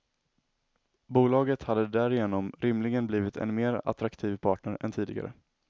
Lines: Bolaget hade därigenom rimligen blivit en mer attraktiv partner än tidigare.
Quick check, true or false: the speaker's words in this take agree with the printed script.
true